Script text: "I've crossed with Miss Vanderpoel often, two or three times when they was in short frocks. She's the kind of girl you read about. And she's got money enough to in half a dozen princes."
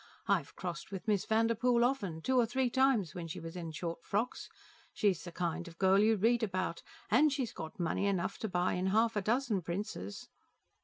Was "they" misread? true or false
true